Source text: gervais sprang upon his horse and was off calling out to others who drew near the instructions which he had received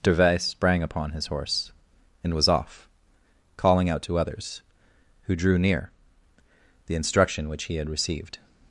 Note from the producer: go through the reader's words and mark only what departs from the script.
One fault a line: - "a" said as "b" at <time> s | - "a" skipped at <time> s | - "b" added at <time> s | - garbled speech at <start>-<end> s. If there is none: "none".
- "instructions" said as "instruction" at 7.0 s